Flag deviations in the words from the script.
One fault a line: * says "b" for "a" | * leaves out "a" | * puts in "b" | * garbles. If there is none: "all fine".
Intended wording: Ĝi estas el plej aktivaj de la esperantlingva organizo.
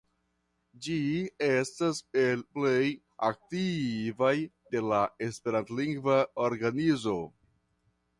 all fine